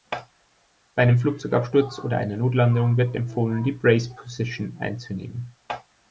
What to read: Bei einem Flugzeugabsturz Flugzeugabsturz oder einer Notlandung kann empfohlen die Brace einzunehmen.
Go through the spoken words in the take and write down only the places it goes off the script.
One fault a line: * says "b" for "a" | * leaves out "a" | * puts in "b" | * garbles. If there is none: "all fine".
* leaves out "Flugzeugabsturz"
* says "wird" for "kann"
* puts in "position"